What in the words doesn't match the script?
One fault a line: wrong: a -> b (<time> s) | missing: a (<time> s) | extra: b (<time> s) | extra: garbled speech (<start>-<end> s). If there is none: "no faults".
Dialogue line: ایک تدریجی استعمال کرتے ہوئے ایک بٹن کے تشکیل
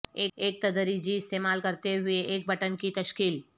wrong: کے -> کی (2.8 s)